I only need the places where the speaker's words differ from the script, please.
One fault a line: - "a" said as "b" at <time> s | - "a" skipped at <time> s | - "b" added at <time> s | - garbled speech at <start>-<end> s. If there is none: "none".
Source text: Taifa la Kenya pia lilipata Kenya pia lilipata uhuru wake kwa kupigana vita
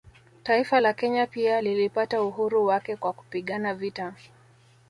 - "Kenya pia lilipata" skipped at 2.2 s